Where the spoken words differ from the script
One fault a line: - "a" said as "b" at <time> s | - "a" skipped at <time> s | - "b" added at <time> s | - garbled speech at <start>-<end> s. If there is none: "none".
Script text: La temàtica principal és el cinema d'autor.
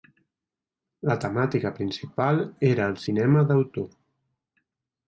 - "és" said as "era" at 2.7 s